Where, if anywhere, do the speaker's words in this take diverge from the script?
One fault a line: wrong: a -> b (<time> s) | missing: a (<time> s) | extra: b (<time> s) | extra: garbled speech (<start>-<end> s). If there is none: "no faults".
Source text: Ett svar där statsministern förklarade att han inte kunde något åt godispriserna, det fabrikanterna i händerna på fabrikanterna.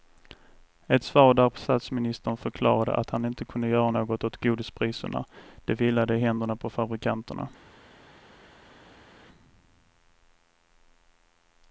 extra: göra (3.7 s)
wrong: fabrikanterna -> vilade (5.7 s)